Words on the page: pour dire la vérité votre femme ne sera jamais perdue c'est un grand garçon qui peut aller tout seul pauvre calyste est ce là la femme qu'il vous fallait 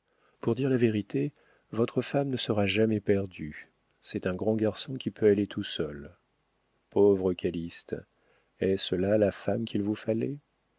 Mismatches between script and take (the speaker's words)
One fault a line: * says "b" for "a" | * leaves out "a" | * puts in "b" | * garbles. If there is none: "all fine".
all fine